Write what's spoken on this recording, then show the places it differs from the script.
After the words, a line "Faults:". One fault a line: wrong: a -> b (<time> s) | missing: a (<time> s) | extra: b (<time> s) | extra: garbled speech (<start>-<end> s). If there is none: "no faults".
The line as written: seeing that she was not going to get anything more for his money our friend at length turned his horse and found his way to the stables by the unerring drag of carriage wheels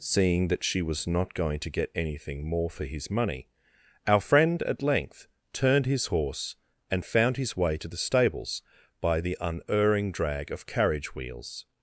seeing that she was not going to get anything more for his money our friend at length turned his horse and found his way to the stables by the unerring drag of carriage wheels
Faults:
no faults